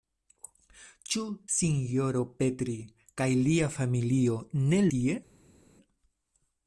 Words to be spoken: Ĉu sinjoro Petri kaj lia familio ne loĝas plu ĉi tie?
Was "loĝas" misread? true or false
true